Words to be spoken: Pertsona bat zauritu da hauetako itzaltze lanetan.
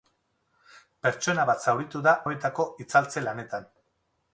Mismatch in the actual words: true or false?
false